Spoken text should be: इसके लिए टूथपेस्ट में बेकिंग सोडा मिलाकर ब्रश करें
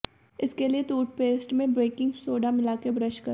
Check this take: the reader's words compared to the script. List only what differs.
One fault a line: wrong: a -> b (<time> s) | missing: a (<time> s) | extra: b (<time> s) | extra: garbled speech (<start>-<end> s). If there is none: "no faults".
no faults